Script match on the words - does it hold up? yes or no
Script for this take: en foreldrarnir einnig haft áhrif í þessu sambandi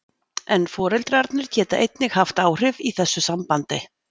no